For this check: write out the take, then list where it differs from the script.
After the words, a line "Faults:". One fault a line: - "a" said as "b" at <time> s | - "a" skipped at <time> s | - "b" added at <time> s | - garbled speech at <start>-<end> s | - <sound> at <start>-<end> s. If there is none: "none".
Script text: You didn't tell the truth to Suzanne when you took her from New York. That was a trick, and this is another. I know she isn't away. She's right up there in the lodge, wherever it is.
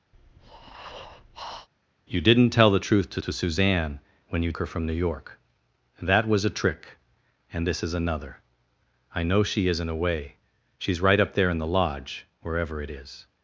You didn't tell the truth to to Suzanne when you her from New York. That was a trick, and this is another. I know she isn't away. She's right up there in the lodge, wherever it is.
Faults:
- breath at 0.1-1.7 s
- "to" added at 3.2 s
- "took" skipped at 4.5 s